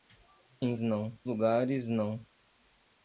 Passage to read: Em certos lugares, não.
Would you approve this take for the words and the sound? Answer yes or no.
no